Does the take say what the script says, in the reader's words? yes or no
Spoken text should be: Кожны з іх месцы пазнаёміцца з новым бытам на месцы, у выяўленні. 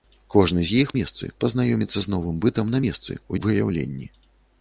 yes